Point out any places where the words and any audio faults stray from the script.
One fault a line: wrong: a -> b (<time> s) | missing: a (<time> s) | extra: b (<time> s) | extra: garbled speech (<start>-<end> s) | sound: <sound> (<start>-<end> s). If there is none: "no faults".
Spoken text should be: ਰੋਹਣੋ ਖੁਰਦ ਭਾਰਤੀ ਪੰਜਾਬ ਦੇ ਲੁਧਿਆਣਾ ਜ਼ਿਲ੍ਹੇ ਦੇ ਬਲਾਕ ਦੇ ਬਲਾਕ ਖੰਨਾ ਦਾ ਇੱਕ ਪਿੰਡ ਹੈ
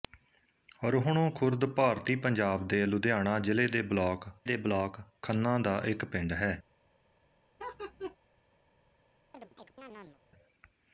sound: laugh (7.6-8.2 s)
sound: chirp (9.3-10.2 s)